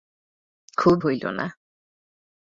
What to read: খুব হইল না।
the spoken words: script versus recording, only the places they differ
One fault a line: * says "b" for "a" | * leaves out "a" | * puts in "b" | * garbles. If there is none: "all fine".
all fine